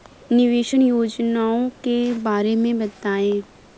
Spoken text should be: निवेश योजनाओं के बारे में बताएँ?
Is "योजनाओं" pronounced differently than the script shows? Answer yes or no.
no